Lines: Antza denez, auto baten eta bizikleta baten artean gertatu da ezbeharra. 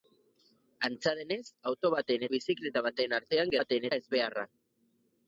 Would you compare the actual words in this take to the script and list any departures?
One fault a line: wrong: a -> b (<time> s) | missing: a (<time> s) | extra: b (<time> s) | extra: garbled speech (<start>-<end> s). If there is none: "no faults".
missing: eta (2.2 s)
wrong: gertatu -> baten (3.6 s)